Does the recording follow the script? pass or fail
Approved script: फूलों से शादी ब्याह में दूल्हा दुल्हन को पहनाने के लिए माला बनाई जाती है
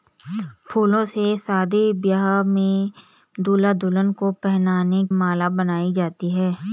fail